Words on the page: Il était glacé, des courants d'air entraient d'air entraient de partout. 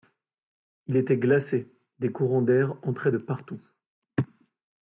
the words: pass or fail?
fail